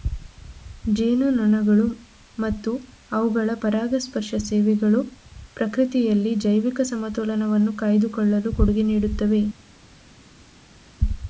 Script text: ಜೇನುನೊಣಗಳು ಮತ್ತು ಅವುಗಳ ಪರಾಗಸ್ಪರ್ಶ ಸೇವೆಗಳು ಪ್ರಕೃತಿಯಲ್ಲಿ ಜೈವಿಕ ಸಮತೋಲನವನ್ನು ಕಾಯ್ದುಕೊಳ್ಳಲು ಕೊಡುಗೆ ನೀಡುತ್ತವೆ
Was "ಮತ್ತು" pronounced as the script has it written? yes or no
yes